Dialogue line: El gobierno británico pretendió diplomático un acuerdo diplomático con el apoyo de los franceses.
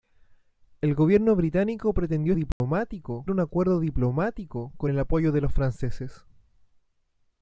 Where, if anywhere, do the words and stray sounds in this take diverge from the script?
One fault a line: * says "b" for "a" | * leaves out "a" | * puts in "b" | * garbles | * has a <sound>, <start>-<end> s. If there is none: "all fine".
* has a dropout, 2.5-2.6 s